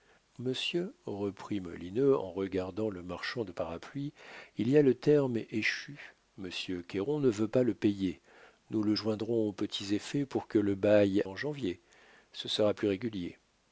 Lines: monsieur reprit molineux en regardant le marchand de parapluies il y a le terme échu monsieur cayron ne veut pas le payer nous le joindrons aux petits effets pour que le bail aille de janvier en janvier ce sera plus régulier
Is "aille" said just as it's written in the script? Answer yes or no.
no